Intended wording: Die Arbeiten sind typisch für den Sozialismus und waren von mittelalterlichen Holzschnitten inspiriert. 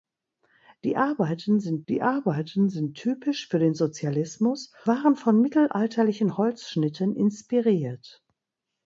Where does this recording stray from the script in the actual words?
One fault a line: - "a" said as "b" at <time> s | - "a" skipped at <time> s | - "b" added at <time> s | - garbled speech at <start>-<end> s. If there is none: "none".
- "die Arbeiten sind" added at 1.9 s
- "und" skipped at 4.7 s